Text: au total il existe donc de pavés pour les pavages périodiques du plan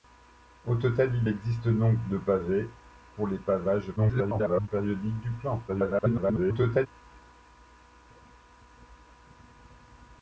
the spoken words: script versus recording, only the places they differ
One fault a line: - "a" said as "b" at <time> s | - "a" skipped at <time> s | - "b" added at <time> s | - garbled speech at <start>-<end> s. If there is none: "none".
- garbled speech at 4.0-4.7 s
- garbled speech at 5.7-6.9 s